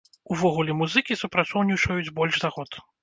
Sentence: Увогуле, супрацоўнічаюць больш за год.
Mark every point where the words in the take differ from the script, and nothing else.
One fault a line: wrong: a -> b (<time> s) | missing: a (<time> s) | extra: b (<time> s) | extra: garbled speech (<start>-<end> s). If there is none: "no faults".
extra: музыкі (0.8 s)